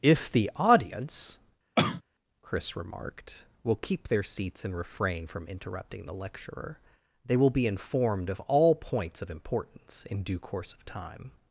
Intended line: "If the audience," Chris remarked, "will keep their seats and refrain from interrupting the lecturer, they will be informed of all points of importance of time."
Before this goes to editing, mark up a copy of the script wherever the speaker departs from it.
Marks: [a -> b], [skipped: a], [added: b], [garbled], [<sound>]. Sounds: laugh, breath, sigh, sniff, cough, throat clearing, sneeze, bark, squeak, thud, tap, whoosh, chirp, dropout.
"If the audience," [cough] Chris remarked, "will keep their seats and refrain from interrupting the lecturer, they will be informed of all points of importance [added: in due course] of time."